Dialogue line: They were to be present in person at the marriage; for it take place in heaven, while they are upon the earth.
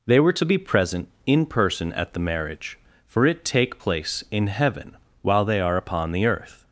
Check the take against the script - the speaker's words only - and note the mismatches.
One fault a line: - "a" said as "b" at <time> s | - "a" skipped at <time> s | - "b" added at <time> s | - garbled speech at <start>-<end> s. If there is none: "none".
none